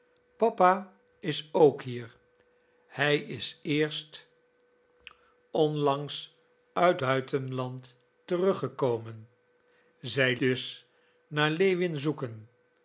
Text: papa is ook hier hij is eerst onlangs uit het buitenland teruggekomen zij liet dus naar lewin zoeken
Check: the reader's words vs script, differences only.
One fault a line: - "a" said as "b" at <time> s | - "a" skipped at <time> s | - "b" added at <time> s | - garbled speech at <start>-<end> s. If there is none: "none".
- "het" skipped at 7.0 s
- "liet" skipped at 10.4 s